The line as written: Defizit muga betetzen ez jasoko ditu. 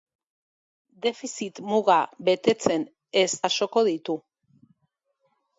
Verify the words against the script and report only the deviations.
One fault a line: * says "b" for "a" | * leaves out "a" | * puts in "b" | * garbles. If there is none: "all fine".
all fine